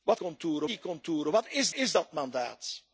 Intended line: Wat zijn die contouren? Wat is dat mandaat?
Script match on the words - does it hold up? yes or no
no